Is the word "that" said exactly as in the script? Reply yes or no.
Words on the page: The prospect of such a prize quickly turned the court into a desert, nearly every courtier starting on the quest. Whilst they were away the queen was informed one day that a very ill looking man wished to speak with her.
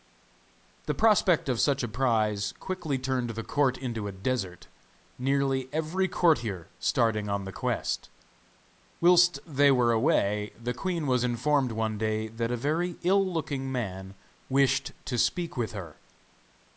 yes